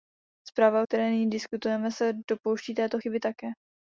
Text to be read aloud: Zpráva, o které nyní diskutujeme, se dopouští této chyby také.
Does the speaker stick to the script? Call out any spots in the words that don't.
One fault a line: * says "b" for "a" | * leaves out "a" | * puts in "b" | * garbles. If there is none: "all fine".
all fine